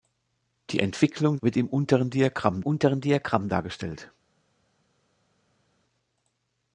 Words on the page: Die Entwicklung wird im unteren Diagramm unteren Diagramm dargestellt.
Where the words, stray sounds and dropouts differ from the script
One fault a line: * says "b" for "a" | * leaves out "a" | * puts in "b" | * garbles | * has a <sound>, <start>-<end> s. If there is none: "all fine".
all fine